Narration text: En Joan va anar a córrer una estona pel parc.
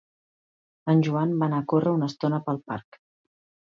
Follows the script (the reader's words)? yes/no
yes